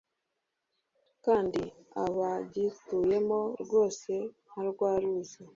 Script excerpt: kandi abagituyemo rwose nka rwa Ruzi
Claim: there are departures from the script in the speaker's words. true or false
false